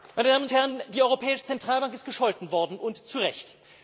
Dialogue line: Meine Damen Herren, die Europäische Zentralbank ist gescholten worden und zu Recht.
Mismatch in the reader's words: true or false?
false